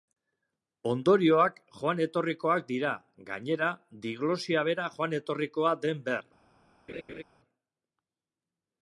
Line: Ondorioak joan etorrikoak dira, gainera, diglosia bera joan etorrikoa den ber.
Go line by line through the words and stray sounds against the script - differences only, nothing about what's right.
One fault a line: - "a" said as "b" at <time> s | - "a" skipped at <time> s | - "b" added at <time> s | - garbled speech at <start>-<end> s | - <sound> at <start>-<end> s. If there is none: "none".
- laugh at 6.9-7.2 s